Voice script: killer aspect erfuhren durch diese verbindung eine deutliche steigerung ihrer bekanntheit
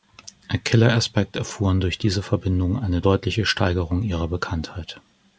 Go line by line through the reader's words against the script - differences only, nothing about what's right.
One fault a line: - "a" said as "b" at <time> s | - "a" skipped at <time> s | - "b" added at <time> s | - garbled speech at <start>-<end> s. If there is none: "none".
none